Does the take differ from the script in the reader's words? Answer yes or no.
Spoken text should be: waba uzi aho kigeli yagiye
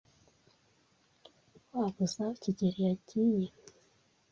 no